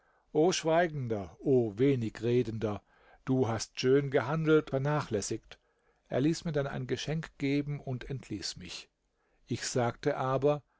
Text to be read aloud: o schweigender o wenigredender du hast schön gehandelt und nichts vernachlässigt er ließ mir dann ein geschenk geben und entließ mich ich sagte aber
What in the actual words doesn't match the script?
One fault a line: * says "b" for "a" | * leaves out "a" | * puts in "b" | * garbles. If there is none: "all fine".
* leaves out "und nichts"